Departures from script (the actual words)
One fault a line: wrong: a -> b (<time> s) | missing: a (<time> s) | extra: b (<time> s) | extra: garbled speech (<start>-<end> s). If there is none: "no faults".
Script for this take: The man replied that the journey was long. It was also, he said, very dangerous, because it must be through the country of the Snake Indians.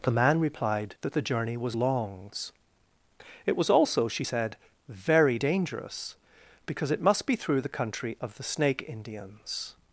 wrong: long -> longs (1.7 s)
wrong: he -> she (4.1 s)